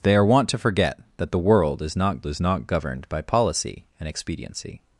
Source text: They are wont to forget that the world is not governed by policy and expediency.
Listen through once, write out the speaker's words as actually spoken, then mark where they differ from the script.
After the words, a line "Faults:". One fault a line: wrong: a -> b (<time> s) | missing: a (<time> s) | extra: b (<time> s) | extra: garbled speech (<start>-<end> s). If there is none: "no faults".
They are wont to forget that the world is not is not governed by policy and expediency.
Faults:
extra: is not (2.3 s)